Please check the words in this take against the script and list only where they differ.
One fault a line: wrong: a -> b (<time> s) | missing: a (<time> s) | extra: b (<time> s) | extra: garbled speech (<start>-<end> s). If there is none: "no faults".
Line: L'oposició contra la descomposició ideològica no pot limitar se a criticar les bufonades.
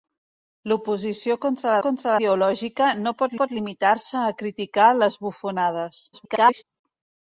wrong: descomposició -> contra (1.8 s)
extra: pot (3.4 s)
extra: garbled speech (6.1-6.6 s)